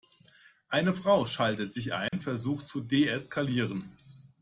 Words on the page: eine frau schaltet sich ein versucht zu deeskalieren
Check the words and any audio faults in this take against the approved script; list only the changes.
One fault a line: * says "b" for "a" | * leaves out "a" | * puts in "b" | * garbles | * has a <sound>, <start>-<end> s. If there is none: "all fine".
* has a dropout, 2.1-2.1 s